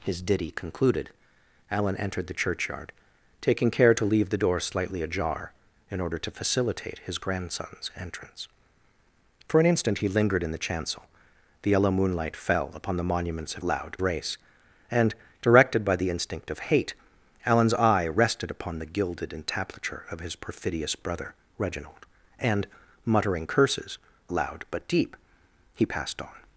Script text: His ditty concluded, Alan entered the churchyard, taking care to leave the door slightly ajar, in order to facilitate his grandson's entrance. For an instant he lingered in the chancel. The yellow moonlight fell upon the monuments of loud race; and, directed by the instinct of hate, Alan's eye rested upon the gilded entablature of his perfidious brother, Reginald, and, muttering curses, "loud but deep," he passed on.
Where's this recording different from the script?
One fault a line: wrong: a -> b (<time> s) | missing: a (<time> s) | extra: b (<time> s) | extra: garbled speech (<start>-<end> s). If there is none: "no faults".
no faults